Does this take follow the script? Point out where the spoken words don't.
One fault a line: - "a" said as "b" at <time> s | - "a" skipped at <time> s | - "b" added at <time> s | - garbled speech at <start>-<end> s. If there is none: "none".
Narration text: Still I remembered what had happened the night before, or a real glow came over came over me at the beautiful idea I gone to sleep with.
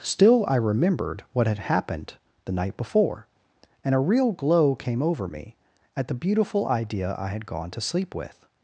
- "or" said as "and" at 3.8 s
- "came over" skipped at 5.3 s
- "had" added at 7.3 s